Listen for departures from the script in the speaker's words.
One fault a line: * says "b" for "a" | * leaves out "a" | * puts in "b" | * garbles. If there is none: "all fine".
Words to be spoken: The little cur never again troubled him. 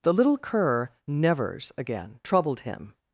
* says "nevers" for "never"